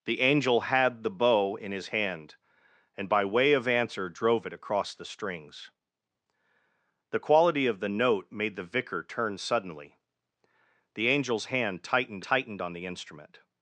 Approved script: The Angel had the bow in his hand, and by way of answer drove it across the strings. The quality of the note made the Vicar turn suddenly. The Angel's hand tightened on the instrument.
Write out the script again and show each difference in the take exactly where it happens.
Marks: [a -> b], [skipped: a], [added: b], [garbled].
The Angel had the bow in his hand, and by way of answer drove it across the strings. The quality of the note made the Vicar turn suddenly. The Angel's hand tightened [added: tightened] on the instrument.